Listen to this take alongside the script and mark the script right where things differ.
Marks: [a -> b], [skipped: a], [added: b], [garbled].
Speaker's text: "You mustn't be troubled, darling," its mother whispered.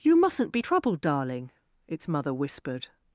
"You mustn't be troubled, darling," its mother whispered.